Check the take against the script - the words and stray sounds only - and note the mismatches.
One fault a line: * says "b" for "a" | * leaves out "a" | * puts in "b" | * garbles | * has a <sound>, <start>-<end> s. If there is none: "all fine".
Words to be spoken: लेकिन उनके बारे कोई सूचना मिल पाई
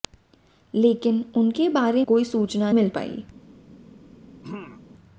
* has a throat clearing, 4.4-4.9 s